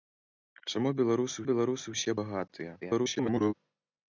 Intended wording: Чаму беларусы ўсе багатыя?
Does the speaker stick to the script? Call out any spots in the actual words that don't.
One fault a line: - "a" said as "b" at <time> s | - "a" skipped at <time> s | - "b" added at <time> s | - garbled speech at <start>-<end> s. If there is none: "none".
- "беларусы" added at 1.5 s
- garbled speech at 2.8-3.5 s